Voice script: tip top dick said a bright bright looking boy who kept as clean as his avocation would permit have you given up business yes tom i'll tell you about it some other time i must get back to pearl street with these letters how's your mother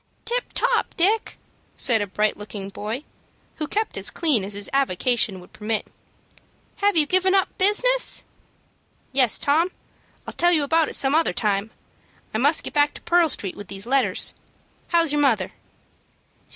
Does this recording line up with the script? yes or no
no